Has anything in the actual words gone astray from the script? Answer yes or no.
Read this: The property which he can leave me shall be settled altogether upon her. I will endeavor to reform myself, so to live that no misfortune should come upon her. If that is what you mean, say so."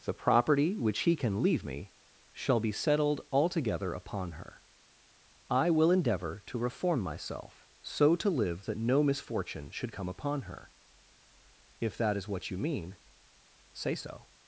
no